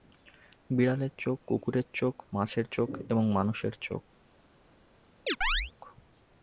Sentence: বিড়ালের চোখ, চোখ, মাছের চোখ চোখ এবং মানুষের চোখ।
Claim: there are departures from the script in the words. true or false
true